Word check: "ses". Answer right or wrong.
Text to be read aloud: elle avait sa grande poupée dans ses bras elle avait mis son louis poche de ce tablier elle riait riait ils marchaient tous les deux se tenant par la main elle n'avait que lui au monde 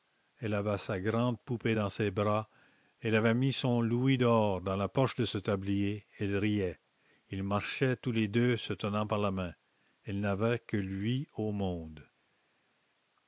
right